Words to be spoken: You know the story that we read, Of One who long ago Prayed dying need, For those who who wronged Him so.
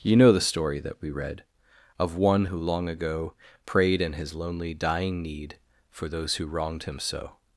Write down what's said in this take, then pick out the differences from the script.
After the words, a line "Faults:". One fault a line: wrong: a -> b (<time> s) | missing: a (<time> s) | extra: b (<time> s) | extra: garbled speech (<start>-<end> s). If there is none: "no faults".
You know the story that we read, Of One who long ago Prayed in His lonely, dying need, For those who wronged Him so.
Faults:
extra: in His lonely (4.0 s)
missing: who (6.5 s)